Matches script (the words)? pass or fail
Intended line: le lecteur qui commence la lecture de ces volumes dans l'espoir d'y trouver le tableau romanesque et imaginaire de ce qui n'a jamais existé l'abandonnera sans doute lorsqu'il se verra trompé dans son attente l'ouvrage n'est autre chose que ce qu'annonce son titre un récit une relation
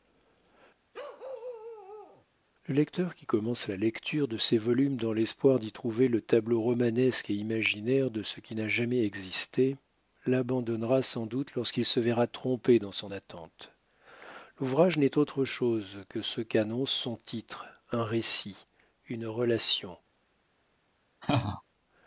pass